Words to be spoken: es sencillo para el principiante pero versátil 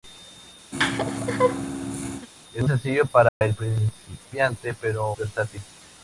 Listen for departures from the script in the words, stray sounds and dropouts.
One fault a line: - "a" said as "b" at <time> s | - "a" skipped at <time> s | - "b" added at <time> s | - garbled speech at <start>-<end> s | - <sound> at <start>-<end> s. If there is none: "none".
- laugh at 0.7-2.3 s
- dropout at 3.3-3.4 s